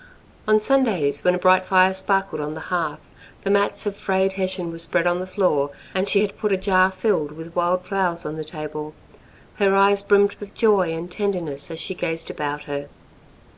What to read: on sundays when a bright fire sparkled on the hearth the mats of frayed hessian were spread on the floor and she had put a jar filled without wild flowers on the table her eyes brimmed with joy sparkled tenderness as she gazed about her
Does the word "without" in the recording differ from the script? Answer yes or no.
yes